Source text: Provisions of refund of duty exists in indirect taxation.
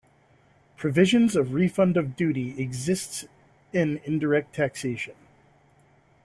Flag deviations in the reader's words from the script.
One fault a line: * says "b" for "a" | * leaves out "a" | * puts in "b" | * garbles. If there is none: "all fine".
all fine